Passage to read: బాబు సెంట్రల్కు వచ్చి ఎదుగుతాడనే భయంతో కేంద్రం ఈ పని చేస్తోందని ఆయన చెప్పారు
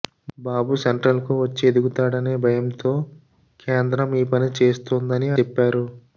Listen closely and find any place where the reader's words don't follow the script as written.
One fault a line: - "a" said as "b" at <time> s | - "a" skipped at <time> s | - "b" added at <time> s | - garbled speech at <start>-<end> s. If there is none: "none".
- "ఆయన" skipped at 5.3 s